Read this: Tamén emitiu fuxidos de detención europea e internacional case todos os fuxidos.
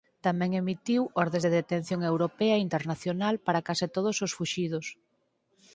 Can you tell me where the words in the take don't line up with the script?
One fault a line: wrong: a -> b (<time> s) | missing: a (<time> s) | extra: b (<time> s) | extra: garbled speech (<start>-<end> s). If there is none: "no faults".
wrong: fuxidos -> ordes (1.2 s)
extra: para (3.5 s)